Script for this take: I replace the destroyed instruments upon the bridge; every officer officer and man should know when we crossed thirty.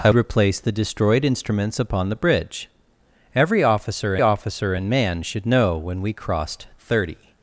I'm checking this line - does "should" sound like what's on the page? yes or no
yes